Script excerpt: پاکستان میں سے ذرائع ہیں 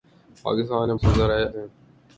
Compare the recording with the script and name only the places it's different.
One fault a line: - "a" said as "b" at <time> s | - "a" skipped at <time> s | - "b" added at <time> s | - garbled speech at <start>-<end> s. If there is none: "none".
none